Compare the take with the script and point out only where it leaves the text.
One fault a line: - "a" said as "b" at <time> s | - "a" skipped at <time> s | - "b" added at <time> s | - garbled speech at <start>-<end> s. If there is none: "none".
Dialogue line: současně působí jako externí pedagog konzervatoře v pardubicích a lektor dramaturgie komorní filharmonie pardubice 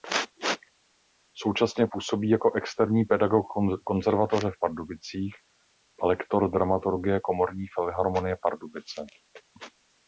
none